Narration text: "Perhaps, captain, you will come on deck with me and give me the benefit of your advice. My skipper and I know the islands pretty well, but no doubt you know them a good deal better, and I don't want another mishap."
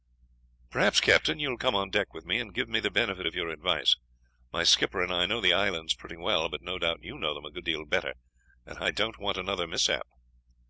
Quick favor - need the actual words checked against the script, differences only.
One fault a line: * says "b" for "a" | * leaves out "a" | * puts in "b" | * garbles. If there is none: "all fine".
all fine